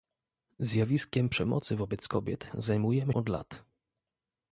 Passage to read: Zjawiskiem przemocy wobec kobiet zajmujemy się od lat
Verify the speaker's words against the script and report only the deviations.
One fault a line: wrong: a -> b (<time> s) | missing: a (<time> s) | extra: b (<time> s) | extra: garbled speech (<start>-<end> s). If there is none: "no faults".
missing: się (3.1 s)